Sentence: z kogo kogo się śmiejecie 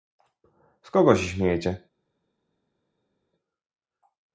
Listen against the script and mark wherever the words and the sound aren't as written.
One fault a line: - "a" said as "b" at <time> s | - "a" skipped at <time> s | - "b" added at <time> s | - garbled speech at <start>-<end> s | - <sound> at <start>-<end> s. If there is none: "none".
- "kogo" skipped at 1.1 s